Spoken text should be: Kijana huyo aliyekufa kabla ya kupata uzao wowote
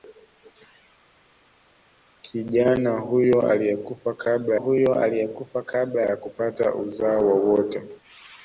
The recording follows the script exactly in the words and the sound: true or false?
false